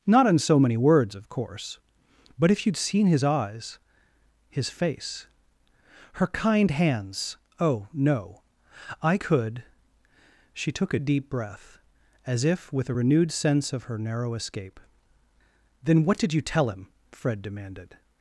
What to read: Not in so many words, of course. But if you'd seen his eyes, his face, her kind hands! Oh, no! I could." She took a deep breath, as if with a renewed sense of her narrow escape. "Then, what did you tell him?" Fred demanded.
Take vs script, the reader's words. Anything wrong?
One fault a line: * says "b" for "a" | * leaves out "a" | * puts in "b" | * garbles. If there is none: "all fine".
all fine